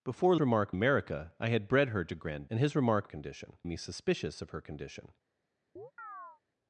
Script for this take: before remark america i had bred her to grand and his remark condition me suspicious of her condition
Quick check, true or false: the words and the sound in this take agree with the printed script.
false